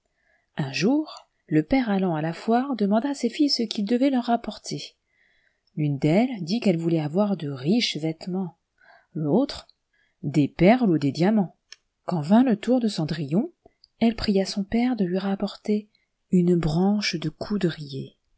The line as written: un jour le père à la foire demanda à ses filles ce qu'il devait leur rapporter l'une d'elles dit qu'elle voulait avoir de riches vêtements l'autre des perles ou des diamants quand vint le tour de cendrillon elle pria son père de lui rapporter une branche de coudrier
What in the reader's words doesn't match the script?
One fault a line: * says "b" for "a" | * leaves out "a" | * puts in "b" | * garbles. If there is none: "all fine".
* puts in "allant"